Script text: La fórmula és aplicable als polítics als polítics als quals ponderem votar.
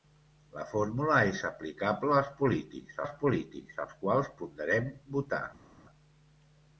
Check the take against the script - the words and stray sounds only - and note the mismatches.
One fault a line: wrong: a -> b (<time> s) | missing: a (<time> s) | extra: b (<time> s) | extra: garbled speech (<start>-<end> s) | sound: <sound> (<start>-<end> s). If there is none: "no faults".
no faults